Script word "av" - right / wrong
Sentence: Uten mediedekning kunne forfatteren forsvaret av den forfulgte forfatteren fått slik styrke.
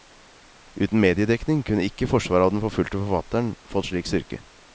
right